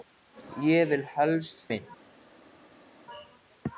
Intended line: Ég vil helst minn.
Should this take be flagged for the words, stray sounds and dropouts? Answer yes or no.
no